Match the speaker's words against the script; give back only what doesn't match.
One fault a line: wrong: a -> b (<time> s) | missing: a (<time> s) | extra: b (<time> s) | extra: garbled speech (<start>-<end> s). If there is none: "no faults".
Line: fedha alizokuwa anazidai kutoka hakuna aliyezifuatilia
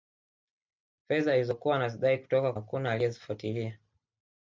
no faults